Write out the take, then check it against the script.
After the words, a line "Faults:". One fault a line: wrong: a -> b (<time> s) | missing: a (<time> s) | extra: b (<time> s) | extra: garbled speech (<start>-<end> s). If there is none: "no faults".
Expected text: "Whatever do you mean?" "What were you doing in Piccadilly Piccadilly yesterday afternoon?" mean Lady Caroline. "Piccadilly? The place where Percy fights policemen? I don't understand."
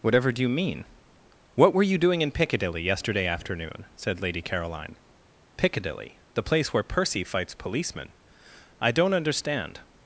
"Whatever do you mean?" "What were you doing in Piccadilly yesterday afternoon?" said Lady Caroline. "Piccadilly? The place where Percy fights policemen? I don't understand."
Faults:
missing: Piccadilly (2.8 s)
wrong: mean -> said (4.0 s)